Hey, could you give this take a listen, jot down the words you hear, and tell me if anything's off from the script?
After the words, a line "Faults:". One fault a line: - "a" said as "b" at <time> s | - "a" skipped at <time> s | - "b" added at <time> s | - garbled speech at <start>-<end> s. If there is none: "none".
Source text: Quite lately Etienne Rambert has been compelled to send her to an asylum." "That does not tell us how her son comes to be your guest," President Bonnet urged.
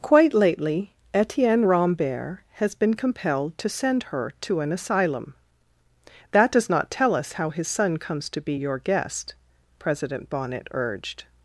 Quite lately Etienne Rambert has been compelled to send her to an asylum." "That does not tell us how his son comes to be your guest," President Bonnet urged.
Faults:
- "her" said as "his" at 7.5 s